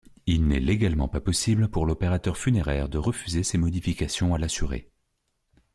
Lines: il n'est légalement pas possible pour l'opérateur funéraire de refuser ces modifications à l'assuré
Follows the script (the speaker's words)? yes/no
yes